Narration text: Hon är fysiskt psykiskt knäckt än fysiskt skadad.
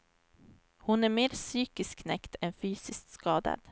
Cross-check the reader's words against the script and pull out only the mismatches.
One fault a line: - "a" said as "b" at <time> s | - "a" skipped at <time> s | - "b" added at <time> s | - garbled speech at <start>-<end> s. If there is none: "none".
- "fysiskt" said as "mer" at 1.1 s